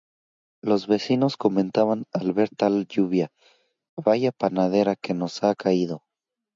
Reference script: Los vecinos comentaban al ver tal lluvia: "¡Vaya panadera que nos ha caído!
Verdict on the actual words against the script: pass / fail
pass